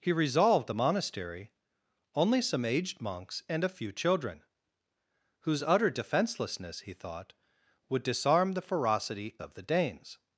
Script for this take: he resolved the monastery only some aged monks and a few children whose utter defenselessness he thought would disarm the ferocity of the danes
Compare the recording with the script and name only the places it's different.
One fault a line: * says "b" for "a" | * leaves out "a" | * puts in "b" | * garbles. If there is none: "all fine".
all fine